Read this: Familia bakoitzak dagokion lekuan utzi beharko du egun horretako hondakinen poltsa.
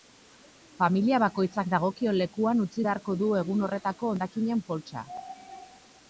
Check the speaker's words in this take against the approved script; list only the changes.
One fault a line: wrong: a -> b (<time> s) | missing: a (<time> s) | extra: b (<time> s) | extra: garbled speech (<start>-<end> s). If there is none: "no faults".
no faults